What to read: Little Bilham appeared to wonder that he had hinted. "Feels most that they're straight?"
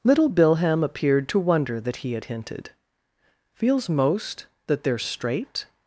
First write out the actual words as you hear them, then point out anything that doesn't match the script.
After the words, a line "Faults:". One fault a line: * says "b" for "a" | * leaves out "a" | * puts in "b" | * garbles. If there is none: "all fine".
Little Bilham appeared to wonder that he had hinted. "Feels most that they're straight?"
Faults:
all fine